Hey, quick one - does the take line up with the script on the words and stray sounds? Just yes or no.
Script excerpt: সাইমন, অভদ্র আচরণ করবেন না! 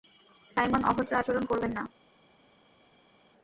yes